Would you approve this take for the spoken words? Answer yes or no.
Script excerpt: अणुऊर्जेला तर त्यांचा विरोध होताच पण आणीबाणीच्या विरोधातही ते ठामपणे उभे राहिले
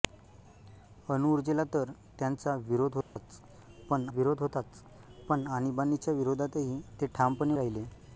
no